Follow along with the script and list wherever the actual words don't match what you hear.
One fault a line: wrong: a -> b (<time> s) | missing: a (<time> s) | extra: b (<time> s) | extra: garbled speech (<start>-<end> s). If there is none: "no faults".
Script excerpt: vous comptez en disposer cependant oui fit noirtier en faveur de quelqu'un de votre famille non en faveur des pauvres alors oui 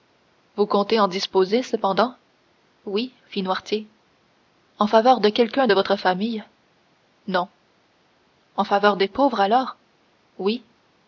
no faults